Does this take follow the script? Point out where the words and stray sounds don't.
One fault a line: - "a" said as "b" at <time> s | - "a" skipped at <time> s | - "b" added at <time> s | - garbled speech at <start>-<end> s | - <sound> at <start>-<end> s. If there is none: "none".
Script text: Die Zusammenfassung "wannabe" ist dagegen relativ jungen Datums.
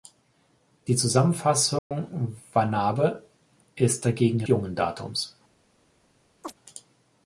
- dropout at 1.8-1.9 s
- "relativ" skipped at 4.4 s
- chirp at 6.4-6.6 s